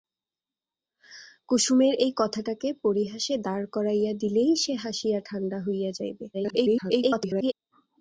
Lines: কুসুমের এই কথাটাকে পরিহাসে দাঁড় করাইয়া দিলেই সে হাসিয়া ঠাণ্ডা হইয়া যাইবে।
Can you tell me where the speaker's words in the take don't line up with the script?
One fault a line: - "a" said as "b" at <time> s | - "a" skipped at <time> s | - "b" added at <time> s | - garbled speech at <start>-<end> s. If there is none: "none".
- garbled speech at 6.3-7.5 s